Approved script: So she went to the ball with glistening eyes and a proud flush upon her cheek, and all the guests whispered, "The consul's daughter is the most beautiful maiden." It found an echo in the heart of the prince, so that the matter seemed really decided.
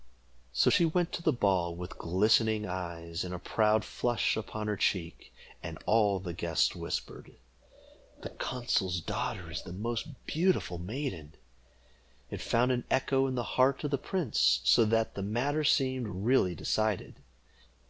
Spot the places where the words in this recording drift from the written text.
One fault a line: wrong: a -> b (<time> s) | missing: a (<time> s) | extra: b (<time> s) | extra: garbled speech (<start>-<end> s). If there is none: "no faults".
no faults